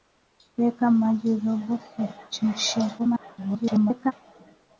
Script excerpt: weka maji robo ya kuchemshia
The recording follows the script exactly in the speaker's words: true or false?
false